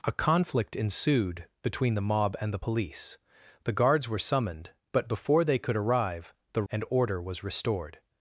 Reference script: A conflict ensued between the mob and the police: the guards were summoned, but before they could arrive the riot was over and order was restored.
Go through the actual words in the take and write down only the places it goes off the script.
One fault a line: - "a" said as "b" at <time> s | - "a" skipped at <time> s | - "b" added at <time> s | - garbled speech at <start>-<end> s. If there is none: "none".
- "riot was over" skipped at 6.6 s